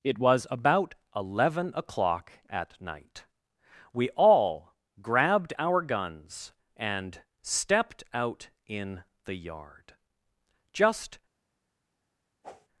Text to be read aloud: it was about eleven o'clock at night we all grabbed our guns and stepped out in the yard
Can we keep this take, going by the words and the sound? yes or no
no